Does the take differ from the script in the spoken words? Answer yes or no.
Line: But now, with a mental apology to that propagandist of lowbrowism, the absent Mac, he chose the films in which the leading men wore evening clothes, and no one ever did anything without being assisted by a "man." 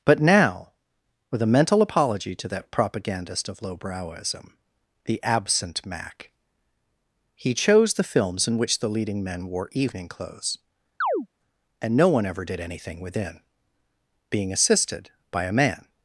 yes